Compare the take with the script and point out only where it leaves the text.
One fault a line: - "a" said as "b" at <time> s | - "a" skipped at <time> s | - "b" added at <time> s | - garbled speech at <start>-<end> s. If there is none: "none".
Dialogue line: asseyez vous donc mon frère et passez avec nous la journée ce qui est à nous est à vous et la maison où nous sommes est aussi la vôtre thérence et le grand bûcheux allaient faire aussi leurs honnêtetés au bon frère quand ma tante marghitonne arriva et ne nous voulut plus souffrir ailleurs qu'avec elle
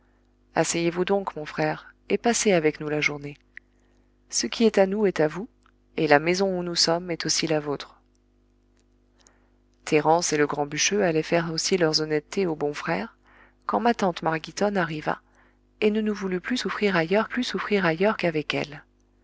- "plus souffrir ailleurs" added at 17.3 s